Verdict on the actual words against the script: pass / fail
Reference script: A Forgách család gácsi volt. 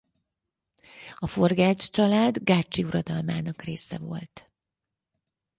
fail